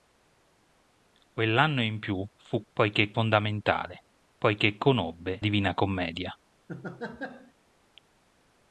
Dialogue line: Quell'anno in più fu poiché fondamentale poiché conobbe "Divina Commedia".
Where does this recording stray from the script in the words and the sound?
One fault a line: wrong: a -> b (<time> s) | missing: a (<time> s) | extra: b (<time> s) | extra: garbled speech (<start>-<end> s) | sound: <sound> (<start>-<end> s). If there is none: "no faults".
sound: laugh (6.7-7.5 s)